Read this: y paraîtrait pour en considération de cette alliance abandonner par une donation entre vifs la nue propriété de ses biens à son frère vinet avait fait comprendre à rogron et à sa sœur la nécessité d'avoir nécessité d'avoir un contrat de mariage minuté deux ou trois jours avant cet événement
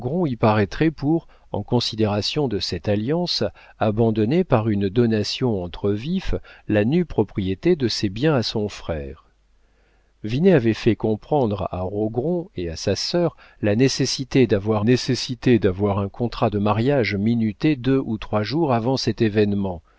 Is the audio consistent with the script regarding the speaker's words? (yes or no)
yes